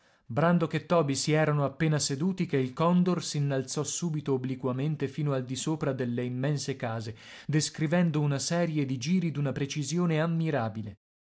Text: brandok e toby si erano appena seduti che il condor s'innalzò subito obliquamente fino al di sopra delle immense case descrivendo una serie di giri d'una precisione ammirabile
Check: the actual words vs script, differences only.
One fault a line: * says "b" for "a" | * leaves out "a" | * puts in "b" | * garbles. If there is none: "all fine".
all fine